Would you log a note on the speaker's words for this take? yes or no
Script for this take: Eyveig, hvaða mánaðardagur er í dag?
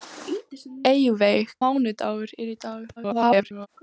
yes